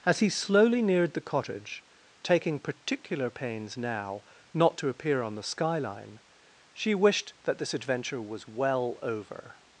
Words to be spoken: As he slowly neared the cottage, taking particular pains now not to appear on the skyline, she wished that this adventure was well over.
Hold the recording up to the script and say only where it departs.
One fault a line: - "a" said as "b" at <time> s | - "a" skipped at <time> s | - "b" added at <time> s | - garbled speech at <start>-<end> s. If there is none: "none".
none